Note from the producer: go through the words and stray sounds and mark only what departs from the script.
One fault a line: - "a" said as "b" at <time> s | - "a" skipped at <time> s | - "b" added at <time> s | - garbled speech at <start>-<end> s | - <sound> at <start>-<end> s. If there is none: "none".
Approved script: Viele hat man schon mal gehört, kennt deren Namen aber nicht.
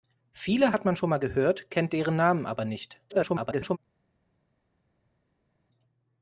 - garbled speech at 3.1-3.8 s